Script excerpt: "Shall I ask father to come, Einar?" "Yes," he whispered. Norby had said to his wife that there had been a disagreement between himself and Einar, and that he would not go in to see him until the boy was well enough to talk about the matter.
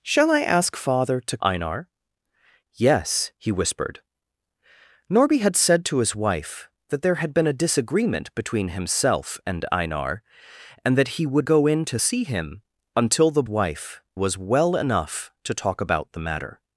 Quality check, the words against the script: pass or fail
fail